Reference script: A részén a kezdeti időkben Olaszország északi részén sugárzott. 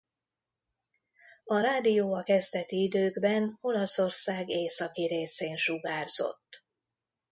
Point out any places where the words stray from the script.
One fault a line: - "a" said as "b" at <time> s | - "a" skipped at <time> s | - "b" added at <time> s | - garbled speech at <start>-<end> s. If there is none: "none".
- "részén" said as "rádió" at 1.6 s